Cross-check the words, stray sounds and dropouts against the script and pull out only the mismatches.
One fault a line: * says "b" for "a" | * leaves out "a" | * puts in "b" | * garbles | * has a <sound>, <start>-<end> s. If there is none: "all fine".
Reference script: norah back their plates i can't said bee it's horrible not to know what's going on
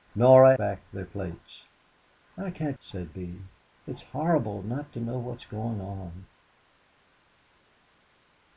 all fine